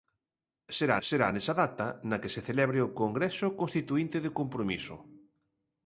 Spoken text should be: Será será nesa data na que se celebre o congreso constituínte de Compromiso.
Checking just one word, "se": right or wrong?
right